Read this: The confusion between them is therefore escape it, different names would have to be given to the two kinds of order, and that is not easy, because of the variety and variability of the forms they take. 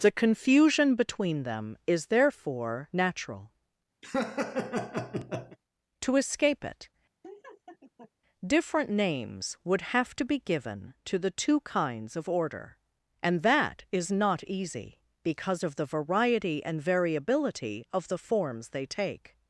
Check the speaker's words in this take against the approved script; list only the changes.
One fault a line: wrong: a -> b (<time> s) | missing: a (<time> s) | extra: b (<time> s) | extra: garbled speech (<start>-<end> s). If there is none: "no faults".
extra: natural To (2.9 s)